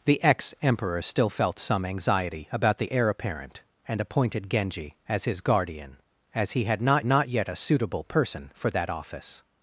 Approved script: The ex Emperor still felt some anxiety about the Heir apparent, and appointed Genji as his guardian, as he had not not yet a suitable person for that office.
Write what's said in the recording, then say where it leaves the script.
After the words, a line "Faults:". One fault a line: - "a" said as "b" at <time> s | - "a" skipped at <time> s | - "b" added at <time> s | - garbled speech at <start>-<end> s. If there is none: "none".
The ex Emperor still felt some anxiety about the Heir apparent, and appointed Genji as his guardian, as he had not not yet a suitable person for that office.
Faults:
none